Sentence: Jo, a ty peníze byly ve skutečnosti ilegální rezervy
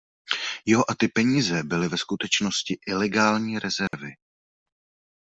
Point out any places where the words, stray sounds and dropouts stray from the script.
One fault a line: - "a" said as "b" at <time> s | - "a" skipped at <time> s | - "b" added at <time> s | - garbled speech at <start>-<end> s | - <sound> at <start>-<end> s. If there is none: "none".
- dropout at 3.9-3.9 s